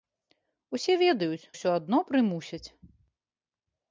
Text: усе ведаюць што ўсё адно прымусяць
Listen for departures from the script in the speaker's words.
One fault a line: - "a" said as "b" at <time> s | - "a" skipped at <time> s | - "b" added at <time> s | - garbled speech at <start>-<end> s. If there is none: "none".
- "што" skipped at 1.5 s